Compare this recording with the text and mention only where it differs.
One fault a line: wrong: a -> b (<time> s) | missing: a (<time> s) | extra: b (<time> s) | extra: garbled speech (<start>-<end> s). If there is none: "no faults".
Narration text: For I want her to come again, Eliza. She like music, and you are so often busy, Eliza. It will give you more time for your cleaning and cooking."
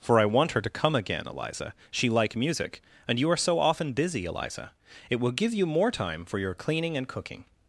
no faults